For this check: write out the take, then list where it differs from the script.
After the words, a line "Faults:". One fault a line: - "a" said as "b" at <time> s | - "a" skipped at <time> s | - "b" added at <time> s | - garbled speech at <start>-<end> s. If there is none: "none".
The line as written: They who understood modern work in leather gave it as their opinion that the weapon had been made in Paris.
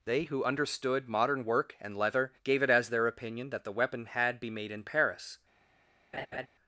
They who understood modern work and leather gave it as their opinion that the weapon had be made in Paris.
Faults:
- "in" said as "and" at 1.8 s
- "been" said as "be" at 4.4 s